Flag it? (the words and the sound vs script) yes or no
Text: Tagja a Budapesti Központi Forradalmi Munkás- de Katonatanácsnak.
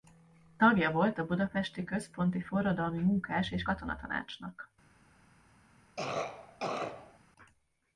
yes